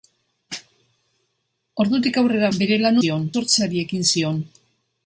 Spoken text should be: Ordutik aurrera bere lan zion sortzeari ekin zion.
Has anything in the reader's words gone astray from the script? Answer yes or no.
no